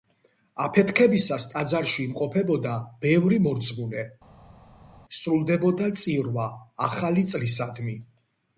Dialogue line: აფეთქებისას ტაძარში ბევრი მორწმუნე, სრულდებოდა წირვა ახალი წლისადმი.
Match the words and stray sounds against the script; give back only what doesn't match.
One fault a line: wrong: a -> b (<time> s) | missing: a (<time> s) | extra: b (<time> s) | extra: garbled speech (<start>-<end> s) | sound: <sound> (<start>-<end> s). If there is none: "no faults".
extra: იმყოფებოდა (2.0 s)